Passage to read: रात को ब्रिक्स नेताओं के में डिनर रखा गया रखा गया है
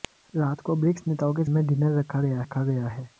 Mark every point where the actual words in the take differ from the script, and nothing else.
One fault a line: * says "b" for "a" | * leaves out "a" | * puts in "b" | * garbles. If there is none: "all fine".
all fine